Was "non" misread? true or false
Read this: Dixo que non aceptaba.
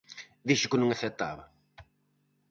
false